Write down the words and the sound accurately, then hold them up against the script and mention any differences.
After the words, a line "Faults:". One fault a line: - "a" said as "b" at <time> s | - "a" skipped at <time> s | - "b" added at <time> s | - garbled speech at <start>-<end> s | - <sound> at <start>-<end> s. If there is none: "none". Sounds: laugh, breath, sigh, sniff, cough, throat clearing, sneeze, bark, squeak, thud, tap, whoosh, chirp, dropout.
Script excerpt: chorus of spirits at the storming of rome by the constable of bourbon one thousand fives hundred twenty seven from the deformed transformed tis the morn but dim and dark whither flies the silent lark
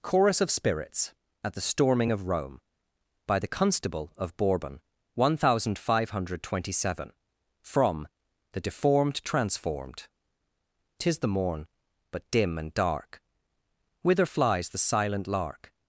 chorus of spirits at the storming of rome by the constable of bourbon one thousand five hundred twenty seven from the deformed transformed tis the morn but dim and dark whither flies the silent lark
Faults:
- "fives" said as "five" at 5.8 s